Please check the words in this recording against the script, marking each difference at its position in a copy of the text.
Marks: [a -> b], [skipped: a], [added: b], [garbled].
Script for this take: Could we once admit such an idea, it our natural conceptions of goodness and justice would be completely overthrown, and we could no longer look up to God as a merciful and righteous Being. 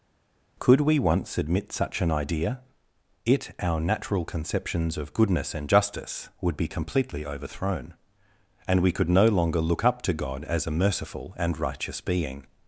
Could we once admit such an idea, it our natural conceptions of goodness and justice would be completely overthrown, and we could no longer look up to God as a merciful and righteous Being.